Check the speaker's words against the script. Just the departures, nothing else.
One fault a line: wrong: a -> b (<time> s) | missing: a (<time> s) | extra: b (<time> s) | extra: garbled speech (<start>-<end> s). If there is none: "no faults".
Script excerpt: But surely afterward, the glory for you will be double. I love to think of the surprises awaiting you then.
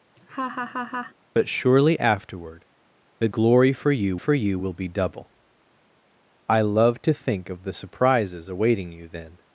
extra: for you (4.1 s)